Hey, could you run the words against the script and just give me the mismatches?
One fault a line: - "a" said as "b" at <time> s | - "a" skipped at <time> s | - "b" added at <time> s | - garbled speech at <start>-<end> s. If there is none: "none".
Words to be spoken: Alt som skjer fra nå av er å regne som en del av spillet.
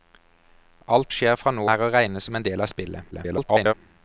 - "som" skipped at 1.1 s
- "av" skipped at 1.7 s
- garbled speech at 3.1-3.7 s